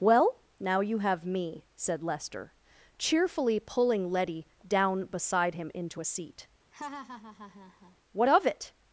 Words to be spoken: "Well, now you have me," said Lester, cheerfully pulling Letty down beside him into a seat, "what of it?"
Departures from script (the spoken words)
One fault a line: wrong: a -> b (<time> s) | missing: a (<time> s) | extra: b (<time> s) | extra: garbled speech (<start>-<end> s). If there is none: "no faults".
no faults